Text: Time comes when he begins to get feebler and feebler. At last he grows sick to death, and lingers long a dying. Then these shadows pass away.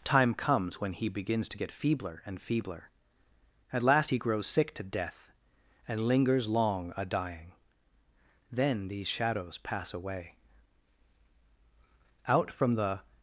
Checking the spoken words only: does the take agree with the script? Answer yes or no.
no